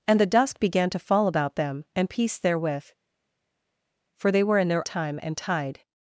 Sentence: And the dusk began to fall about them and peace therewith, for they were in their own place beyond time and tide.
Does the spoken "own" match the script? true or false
false